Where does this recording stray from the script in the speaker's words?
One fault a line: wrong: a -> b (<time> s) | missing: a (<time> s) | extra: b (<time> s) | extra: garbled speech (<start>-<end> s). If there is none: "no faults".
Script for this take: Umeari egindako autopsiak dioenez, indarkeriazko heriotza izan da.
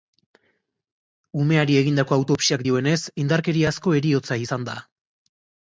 no faults